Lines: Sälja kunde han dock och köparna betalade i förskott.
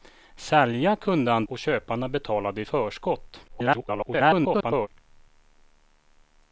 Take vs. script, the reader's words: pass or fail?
fail